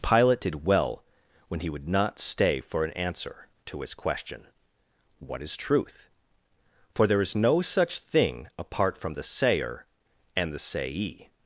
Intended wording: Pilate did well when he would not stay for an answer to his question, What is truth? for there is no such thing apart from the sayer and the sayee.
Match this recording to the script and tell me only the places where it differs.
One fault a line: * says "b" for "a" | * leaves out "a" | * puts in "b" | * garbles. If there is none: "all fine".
all fine